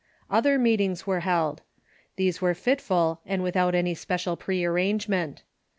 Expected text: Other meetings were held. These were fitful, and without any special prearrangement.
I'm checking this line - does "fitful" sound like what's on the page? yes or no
yes